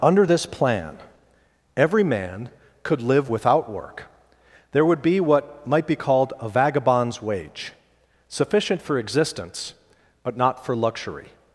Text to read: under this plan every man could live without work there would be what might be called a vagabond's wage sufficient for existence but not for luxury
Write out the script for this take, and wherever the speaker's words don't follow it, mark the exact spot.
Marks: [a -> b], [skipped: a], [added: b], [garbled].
under this plan every man could live without work there would be what might be called a vagabond's wage sufficient for existence but not for luxury